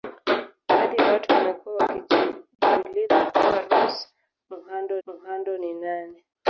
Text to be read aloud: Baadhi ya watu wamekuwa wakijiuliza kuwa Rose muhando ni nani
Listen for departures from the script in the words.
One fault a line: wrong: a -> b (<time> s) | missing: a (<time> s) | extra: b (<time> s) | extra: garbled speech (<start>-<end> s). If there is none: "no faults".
extra: muhando (5.0 s)